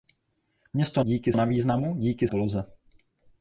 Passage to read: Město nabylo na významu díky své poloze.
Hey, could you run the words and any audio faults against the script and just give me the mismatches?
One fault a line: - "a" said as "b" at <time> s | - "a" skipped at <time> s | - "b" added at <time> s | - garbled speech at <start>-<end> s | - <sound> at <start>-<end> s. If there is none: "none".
- "nabylo" said as "díky" at 1.0 s
- "své" skipped at 2.3 s